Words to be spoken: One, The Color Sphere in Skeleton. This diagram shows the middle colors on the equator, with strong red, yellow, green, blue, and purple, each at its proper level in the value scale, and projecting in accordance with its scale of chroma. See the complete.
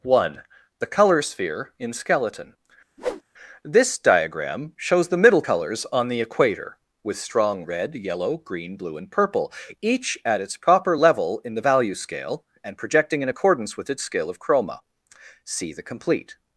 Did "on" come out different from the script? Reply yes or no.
no